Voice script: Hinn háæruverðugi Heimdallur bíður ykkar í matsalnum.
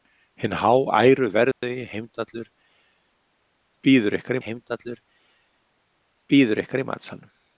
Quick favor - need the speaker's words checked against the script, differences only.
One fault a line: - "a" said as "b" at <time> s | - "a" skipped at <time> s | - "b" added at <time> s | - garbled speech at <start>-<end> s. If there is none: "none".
- "Heimdallur bíður ykkar" added at 4.5 s